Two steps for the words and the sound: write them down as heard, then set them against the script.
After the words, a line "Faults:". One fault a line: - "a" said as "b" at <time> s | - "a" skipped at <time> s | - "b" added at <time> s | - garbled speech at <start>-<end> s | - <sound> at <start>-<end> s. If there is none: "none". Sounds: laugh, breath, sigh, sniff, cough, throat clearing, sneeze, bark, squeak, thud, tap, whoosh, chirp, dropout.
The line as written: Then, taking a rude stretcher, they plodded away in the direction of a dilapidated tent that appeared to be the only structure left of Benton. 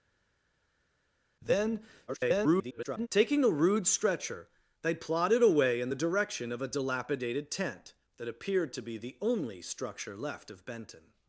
Then, [garbled] taking a rude stretcher, they plodded away in the direction of a dilapidated tent that appeared to be the only structure left of Benton.
Faults:
- garbled speech at 2.1-3.1 s